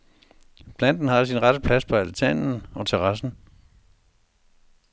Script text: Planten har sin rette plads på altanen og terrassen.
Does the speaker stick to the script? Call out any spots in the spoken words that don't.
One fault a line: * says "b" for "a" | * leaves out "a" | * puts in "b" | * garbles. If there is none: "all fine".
all fine